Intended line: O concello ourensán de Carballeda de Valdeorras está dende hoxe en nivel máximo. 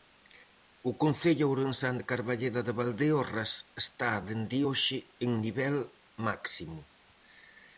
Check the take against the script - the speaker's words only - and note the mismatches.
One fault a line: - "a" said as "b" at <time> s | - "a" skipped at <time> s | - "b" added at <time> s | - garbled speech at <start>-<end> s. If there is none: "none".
none